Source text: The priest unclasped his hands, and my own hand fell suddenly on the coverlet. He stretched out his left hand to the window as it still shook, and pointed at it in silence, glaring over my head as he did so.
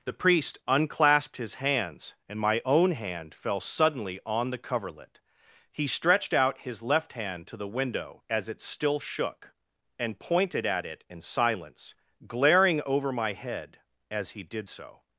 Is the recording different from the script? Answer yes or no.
no